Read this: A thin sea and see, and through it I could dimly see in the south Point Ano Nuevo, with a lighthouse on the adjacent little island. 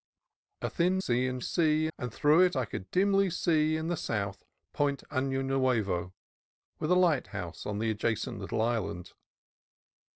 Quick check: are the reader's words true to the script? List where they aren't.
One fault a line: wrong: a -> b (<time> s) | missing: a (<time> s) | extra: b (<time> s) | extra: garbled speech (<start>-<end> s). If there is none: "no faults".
no faults